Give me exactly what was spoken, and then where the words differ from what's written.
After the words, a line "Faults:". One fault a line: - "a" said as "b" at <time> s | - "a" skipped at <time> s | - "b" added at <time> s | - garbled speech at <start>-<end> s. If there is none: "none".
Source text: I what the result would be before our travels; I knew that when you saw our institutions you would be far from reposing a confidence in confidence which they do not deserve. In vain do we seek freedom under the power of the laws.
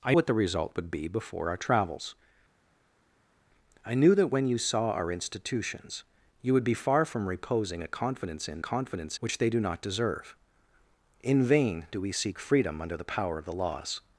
I what the result would be before our travels; I knew that when you saw our institutions you would be far from reposing a confidence in confidence which they do not deserve. In vain do we seek freedom under the power of the laws.
Faults:
none